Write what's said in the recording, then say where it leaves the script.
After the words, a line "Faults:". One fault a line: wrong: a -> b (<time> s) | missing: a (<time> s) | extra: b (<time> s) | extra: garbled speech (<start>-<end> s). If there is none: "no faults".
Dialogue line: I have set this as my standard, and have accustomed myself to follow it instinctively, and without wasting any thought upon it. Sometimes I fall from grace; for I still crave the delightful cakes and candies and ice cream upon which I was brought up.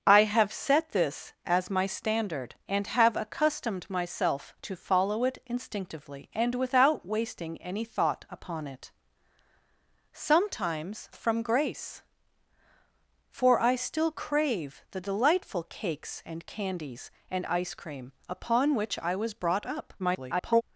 I have set this as my standard, and have accustomed myself to follow it instinctively, and without wasting any thought upon it. Sometimes from grace; for I still crave the delightful cakes and candies and ice cream upon which I was brought up. [garbled]
Faults:
missing: I fall (11.1 s)
extra: garbled speech (20.0-20.6 s)